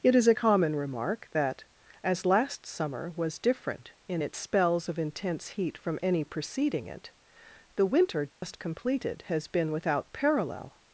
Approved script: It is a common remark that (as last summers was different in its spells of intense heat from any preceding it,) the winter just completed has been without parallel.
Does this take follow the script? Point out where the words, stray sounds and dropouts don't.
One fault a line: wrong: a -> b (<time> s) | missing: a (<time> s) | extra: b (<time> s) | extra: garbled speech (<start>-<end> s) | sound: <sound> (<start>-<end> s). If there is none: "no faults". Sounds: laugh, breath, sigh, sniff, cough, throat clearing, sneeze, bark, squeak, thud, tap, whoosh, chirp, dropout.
wrong: summers -> summer (2.7 s)
sound: dropout (8.3-8.4 s)